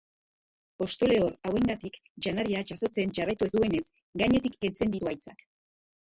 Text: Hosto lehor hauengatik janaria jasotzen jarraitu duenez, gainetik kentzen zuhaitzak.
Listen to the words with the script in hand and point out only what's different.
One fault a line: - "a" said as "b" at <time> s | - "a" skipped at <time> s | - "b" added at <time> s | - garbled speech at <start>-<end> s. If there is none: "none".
none